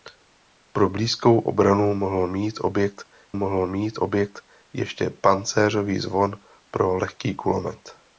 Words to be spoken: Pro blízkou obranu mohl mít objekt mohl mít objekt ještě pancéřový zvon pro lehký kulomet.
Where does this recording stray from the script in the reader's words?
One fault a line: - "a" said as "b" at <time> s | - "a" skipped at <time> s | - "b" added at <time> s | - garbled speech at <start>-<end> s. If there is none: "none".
none